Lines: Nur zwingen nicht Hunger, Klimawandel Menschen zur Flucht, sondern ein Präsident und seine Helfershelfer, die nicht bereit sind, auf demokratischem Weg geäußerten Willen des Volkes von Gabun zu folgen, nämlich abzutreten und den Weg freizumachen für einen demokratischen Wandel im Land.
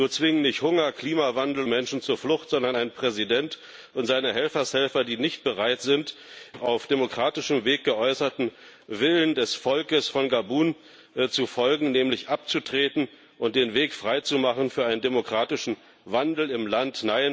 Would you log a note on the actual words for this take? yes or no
no